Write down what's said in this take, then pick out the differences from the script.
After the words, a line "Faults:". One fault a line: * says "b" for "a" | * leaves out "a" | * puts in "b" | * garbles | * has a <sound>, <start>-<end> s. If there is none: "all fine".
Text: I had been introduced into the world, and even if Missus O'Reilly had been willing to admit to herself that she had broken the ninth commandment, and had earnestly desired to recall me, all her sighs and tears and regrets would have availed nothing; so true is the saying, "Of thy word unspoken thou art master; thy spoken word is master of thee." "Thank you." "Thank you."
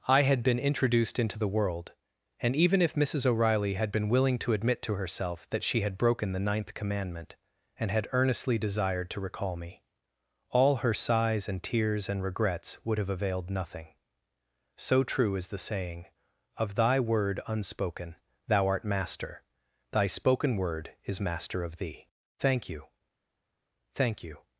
I had been introduced into the world, and even if Missus O'Reilly had been willing to admit to herself that she had broken the ninth commandment, and had earnestly desired to recall me, all her sighs and tears and regrets would have availed nothing; so true is the saying, "Of thy word unspoken thou art master; thy spoken word is master of thee." "Thank you." "Thank you."
Faults:
all fine